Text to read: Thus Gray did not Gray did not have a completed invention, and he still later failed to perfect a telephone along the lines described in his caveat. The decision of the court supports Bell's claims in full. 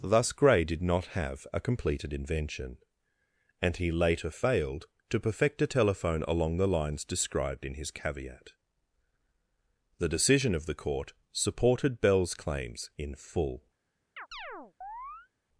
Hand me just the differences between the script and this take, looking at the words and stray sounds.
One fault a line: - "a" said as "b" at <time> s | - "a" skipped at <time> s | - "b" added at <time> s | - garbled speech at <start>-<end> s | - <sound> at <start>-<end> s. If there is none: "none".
- "Gray did not" skipped at 1.2 s
- "still" skipped at 3.9 s
- "supports" said as "supported" at 11.3 s
- chirp at 14.2-15.3 s